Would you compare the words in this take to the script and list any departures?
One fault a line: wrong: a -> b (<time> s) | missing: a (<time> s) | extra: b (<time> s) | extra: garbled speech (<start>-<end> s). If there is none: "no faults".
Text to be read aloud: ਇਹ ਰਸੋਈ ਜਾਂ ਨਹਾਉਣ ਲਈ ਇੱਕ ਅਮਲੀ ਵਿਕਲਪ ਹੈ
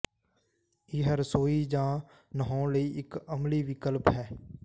no faults